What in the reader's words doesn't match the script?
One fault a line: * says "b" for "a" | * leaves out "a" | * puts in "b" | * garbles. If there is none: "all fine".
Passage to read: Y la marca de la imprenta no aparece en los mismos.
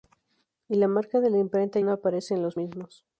all fine